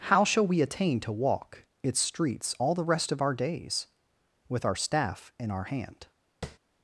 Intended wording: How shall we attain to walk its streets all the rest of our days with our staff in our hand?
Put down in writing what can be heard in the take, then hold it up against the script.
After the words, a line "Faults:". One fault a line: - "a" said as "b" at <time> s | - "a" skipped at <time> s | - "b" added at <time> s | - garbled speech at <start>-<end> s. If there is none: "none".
How shall we attain to walk its streets all the rest of our days with our staff in our hand?
Faults:
none